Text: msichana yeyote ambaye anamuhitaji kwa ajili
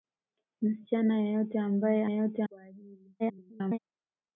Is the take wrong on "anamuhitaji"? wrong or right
wrong